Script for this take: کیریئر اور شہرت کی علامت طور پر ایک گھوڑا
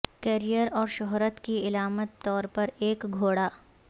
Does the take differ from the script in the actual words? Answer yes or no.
no